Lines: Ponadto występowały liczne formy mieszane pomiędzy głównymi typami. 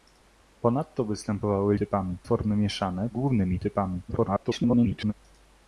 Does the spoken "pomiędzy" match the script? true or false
false